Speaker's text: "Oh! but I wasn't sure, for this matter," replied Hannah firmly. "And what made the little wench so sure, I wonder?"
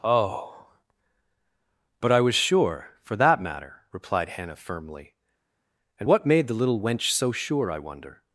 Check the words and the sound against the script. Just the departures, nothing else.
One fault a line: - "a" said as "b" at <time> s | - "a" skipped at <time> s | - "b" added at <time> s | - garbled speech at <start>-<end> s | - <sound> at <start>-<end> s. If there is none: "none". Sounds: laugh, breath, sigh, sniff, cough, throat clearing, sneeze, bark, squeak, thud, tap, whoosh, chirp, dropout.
- "wasn't" said as "was" at 2.2 s
- "this" said as "that" at 3.2 s